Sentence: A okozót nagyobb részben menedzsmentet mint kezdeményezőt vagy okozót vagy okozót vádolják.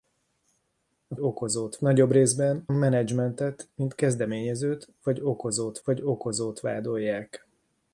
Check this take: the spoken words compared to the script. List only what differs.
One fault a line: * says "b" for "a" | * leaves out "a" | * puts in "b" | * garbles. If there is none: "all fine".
all fine